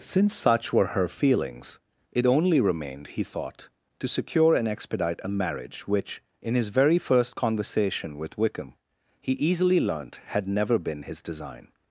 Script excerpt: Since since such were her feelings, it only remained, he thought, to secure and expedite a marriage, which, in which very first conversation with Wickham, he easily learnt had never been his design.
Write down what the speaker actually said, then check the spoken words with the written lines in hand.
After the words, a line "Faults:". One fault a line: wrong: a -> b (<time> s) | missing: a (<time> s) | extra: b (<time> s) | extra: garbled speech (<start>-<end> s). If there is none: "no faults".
Since such were her feelings, it only remained, he thought, to secure and expedite a marriage, which, in his very first conversation with Wickham, he easily learnt had never been his design.
Faults:
missing: since (0.3 s)
wrong: which -> his (6.5 s)